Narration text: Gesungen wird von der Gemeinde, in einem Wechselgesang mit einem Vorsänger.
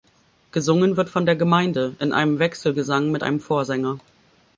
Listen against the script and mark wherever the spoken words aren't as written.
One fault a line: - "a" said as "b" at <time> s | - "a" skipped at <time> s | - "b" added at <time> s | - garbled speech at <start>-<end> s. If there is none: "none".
none